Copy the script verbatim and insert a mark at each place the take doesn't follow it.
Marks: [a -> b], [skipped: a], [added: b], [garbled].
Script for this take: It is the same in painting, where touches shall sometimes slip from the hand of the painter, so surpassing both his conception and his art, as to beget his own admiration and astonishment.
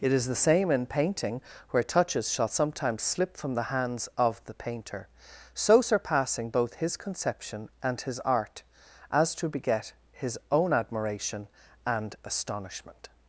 It is the same in painting, where touches shall sometimes slip from the [hand -> hands] of the painter, so surpassing both his conception and his art, as to beget his own admiration and astonishment.